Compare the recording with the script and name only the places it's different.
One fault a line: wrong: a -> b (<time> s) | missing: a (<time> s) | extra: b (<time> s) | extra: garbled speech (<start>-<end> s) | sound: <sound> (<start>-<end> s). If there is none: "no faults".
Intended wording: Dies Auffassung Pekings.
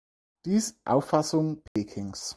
sound: dropout (1.7-1.8 s)